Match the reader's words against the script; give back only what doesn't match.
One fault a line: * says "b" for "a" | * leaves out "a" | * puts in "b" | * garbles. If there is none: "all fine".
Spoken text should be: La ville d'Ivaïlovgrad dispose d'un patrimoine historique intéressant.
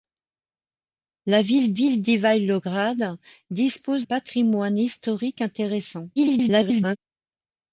* puts in "ville"
* leaves out "d'un"
* garbles